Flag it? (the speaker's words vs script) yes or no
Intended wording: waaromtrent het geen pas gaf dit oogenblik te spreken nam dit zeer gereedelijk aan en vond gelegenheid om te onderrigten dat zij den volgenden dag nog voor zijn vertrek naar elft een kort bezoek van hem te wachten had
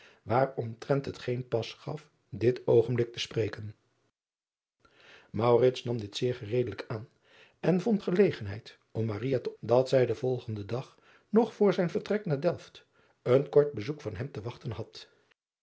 yes